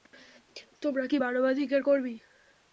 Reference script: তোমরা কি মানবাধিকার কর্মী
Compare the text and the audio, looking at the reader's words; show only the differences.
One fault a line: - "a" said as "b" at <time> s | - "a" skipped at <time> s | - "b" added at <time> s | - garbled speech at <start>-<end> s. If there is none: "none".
none